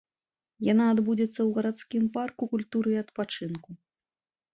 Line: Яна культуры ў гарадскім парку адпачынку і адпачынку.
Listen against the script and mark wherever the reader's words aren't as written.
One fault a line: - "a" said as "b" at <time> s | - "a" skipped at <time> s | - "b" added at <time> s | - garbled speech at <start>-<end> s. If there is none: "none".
- "культуры" said as "адбудзецца" at 0.9 s
- "адпачынку" said as "культуры" at 2.5 s